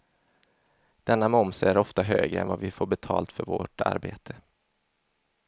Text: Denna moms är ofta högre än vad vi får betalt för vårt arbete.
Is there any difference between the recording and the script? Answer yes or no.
no